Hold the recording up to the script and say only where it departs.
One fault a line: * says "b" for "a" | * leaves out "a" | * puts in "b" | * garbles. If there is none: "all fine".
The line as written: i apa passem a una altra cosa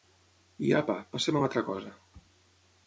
all fine